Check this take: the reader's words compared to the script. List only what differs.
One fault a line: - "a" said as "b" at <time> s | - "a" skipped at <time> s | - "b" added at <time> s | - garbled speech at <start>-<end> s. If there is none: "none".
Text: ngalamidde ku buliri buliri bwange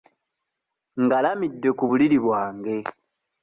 - "buliri" skipped at 2.2 s